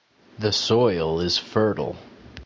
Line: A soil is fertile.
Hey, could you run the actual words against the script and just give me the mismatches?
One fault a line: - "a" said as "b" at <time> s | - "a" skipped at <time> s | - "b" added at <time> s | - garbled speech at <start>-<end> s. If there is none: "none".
- "A" said as "The" at 0.4 s